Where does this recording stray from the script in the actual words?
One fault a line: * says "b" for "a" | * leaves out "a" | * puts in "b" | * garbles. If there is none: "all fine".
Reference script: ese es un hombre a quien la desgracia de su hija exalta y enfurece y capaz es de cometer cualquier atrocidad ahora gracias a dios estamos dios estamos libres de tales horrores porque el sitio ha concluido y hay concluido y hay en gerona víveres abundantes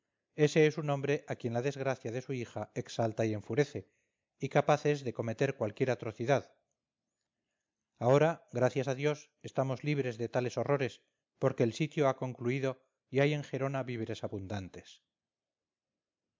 * leaves out "dios estamos"
* leaves out "concluido y hay"